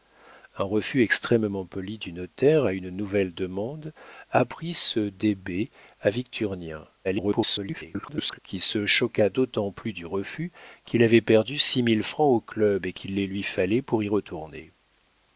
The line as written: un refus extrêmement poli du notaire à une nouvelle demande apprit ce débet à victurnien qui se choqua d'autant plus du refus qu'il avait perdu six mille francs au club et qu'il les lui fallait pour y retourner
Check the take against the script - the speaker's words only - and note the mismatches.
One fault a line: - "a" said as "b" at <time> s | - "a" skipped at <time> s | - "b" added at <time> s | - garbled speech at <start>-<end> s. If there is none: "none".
- garbled speech at 7.0-8.4 s